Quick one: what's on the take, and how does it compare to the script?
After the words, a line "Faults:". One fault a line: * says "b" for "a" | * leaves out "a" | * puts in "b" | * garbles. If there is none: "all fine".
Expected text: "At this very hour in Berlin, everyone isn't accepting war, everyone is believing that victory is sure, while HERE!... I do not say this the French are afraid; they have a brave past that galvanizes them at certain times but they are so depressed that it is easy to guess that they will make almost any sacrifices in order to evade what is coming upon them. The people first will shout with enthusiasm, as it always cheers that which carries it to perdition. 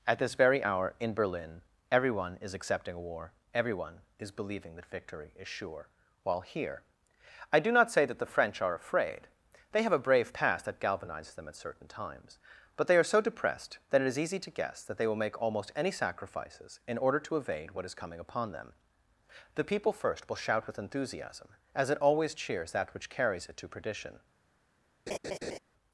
"At this very hour in Berlin, everyone is accepting war, everyone is believing that victory is sure, while HERE!... I do not say that the French are afraid; they have a brave past that galvanizes them at certain times but they are so depressed that it is easy to guess that they will make almost any sacrifices in order to evade what is coming upon them. The people first will shout with enthusiasm, as it always cheers that which carries it to perdition.
Faults:
* says "is" for "isn't"
* says "that" for "this"